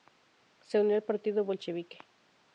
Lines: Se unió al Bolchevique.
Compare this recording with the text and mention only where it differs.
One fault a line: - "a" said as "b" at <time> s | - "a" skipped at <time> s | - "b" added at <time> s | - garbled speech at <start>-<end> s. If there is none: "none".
- "Partido" added at 1.0 s